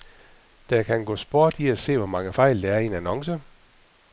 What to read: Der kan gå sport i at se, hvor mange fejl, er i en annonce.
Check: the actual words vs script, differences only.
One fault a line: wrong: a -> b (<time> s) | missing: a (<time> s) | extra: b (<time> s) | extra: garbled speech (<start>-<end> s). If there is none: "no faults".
extra: der (2.6 s)